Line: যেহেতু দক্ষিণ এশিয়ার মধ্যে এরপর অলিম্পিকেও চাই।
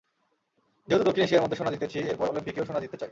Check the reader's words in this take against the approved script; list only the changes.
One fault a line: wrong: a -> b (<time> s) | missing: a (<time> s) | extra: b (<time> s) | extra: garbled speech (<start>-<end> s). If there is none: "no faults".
extra: সোনা জিতেছি (1.6 s)
extra: সোনা জিততে (2.7 s)